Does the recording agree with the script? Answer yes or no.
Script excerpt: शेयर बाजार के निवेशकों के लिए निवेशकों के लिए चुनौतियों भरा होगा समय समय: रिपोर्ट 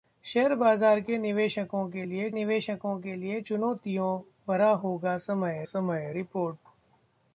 yes